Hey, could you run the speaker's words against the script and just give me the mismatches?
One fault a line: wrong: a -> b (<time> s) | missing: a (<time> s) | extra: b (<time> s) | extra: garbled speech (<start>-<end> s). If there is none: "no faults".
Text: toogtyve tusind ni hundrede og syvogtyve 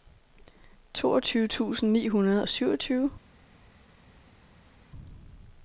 no faults